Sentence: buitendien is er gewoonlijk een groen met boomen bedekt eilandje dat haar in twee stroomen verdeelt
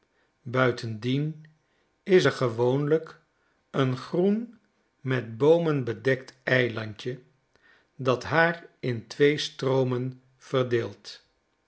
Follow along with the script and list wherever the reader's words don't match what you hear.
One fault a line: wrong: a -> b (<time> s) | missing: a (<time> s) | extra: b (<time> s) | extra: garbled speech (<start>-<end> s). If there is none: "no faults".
no faults